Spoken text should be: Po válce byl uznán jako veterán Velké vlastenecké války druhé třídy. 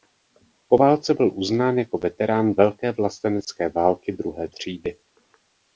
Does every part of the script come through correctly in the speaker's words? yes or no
yes